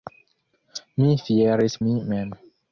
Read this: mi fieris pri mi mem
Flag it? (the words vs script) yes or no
yes